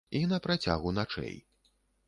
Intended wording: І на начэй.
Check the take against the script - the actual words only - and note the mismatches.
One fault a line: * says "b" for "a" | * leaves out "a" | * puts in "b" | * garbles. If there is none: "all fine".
* puts in "працягу"